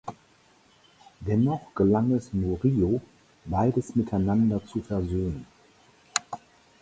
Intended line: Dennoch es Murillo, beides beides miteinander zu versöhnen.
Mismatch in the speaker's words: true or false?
true